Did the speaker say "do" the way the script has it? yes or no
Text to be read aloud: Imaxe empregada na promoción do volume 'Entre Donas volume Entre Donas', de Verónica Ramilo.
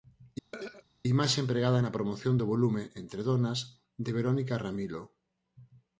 yes